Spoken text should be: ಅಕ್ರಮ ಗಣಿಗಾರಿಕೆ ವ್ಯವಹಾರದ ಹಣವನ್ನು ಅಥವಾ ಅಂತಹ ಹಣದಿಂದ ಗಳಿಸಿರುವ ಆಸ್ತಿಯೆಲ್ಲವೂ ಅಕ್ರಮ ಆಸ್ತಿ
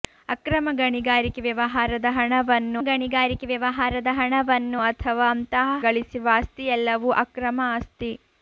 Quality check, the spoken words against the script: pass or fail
fail